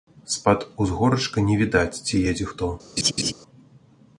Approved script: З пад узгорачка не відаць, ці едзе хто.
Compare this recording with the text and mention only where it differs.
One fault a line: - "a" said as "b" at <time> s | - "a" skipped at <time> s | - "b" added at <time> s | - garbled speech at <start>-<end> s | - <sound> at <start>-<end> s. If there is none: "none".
- laugh at 3.0-3.3 s